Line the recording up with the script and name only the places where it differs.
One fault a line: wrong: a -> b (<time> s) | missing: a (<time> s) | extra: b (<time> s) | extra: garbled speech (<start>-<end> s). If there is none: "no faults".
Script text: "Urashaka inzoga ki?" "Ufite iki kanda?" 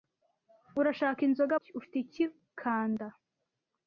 no faults